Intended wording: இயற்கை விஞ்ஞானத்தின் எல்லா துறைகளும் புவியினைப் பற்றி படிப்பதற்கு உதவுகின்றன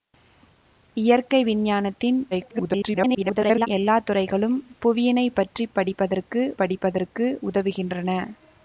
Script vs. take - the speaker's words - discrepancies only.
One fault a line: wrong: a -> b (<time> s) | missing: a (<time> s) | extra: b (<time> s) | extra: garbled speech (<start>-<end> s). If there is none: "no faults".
extra: garbled speech (2.3-3.7 s)
extra: படிப்பதற்கு (6.6 s)